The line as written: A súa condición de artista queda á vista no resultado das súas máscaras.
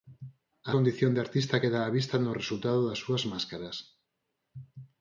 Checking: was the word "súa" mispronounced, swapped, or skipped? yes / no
yes